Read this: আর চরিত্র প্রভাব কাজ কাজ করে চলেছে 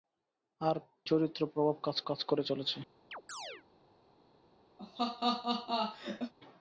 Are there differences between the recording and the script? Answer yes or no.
no